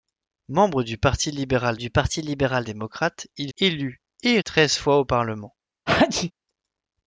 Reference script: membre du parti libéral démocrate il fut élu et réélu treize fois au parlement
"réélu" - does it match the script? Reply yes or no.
no